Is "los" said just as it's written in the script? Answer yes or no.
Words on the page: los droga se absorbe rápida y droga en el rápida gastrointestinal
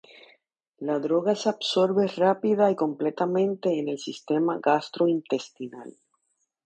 no